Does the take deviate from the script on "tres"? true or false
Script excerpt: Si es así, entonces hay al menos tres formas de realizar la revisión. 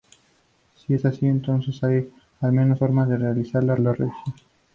true